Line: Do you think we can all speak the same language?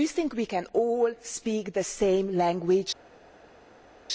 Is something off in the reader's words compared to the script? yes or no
no